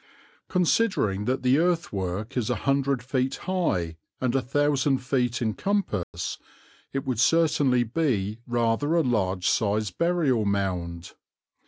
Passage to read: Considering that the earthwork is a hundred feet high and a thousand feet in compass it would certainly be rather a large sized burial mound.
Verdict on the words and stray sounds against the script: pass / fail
fail